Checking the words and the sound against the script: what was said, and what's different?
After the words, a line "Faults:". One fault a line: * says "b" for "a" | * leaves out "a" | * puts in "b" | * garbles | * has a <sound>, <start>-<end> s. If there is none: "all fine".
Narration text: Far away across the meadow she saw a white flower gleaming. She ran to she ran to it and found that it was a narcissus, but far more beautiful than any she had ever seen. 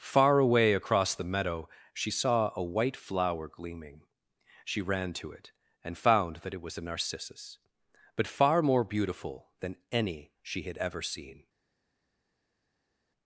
Far away across the meadow she saw a white flower gleaming. She ran to it and found that it was a narcissus, but far more beautiful than any she had ever seen.
Faults:
* leaves out "she ran to"